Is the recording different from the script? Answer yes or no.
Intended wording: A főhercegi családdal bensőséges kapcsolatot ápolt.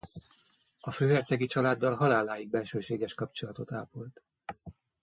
yes